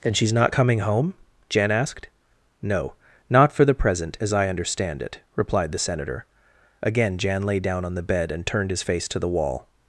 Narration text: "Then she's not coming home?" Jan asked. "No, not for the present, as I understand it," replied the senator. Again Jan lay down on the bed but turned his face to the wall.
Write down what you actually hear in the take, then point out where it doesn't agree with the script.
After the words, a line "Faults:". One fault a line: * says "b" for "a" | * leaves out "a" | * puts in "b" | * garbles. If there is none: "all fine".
"Then she's not coming home?" Jan asked. "No, not for the present, as I understand it," replied the senator. Again Jan lay down on the bed and turned his face to the wall.
Faults:
* says "and" for "but"